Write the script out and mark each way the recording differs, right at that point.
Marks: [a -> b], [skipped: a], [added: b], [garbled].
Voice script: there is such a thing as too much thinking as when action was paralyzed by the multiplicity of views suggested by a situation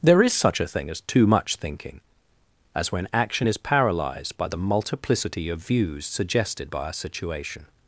there is such a thing as too much thinking as when action [was -> is] paralyzed by the multiplicity of views suggested by a situation